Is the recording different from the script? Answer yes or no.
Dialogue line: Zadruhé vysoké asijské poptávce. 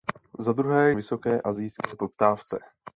no